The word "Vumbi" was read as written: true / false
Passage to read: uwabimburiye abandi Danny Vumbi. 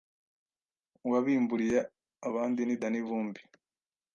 true